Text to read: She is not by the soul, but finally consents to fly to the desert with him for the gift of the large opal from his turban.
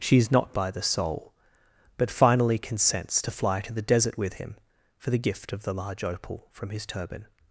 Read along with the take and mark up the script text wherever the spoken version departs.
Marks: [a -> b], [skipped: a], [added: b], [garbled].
She is not by the soul, but finally consents to fly to the desert with him for the gift of the large opal from his turban.